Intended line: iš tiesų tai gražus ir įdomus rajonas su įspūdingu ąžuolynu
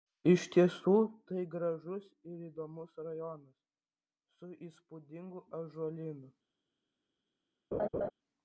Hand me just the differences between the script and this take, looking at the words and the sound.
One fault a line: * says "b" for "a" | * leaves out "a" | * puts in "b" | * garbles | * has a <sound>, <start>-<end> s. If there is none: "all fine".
* has a laugh, 7.7-8.1 s